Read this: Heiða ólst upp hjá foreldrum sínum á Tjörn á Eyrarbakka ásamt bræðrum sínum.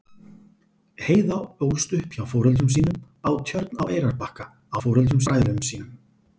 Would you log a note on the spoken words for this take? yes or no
yes